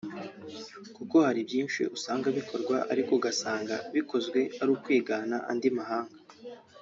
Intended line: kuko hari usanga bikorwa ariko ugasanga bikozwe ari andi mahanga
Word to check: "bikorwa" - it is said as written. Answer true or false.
true